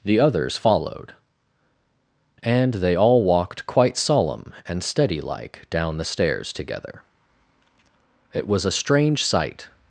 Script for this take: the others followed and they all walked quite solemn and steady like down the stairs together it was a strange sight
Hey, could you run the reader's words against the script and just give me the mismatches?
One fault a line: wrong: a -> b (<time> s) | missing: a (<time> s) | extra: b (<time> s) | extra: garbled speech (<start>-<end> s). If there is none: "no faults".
no faults